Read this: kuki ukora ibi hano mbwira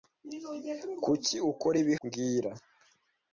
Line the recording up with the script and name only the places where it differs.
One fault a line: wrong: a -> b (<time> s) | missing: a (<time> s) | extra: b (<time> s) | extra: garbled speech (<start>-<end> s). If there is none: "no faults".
missing: hano (2.0 s)